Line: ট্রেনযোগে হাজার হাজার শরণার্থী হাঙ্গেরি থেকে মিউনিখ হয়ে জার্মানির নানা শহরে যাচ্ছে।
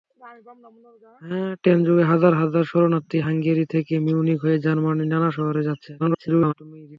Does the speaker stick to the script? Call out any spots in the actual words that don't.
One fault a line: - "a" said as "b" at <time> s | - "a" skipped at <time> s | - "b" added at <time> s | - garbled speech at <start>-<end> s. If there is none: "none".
- garbled speech at 6.0-6.5 s